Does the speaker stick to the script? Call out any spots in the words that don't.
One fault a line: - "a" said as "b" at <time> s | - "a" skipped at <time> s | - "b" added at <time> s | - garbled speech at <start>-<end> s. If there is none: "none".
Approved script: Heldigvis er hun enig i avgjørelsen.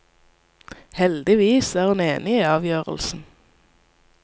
none